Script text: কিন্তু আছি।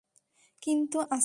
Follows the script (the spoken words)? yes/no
yes